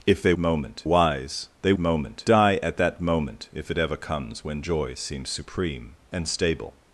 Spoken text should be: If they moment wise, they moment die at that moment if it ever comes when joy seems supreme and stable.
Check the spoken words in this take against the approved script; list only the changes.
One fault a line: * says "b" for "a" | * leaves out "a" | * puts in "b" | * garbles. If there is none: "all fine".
all fine